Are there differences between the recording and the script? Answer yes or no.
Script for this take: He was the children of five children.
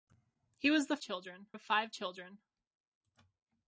no